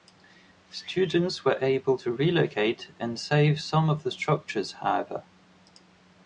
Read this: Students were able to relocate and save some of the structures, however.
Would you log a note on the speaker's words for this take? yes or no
no